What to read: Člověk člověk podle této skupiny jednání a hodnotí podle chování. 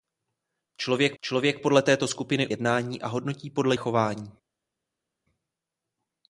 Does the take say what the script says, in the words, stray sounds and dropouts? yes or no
yes